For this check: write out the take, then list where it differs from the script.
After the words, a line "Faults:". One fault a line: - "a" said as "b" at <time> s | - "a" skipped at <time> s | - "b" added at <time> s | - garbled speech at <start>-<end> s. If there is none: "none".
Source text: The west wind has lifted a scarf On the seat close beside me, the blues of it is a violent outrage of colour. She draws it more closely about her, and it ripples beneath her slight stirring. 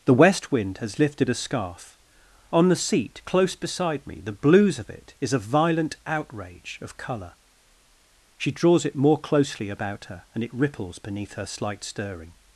The west wind has lifted a scarf On the seat close beside me, the blues of it is a violent outrage of colour. She draws it more closely about her, and it ripples beneath her slight stirring.
Faults:
none